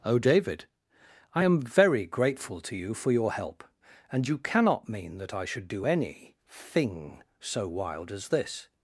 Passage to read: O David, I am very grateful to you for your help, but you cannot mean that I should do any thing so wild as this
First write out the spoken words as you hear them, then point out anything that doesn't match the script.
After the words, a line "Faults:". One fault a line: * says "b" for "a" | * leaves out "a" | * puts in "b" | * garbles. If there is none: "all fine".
O David, I am very grateful to you for your help, and you cannot mean that I should do any thing so wild as this
Faults:
* says "and" for "but"